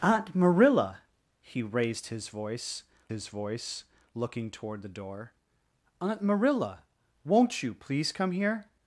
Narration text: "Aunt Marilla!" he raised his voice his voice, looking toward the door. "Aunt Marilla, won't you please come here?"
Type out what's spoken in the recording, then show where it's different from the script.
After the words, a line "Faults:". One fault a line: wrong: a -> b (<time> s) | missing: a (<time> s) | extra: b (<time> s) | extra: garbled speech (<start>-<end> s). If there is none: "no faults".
"Aunt Marilla!" he raised his voice his voice, looking toward the door. "Aunt Marilla, won't you please come here?"
Faults:
no faults